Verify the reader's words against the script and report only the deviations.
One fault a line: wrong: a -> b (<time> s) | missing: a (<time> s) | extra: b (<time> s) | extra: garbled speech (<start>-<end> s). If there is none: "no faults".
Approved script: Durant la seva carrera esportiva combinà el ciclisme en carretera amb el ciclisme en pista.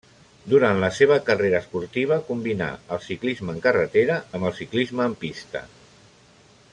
no faults